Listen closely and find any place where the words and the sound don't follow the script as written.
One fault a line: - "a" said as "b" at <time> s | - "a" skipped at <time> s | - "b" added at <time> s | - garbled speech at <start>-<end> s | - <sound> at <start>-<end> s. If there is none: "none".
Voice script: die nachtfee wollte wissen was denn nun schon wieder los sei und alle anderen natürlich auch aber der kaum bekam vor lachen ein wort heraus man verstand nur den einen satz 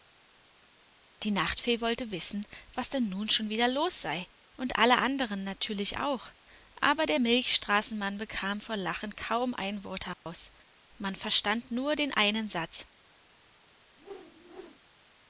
- "kaum" said as "milchstraßenmann" at 7.2 s
- "kaum" added at 9.2 s
- dropout at 10.1-10.3 s
- whoosh at 14.0-14.8 s